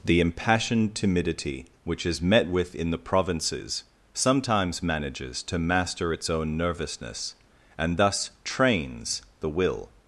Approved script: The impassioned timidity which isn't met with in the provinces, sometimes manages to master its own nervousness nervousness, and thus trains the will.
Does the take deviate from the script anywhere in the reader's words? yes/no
yes